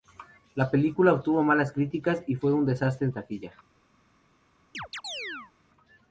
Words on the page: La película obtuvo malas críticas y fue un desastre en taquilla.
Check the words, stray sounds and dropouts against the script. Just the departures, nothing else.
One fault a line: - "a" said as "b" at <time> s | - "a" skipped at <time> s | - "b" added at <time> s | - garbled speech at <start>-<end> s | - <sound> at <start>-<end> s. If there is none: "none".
- chirp at 4.7-5.5 s